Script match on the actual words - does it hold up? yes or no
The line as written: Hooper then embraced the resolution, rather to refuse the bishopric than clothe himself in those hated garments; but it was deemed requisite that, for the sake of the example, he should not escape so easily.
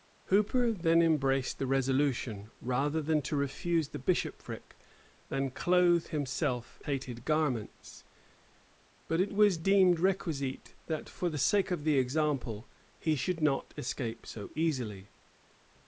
no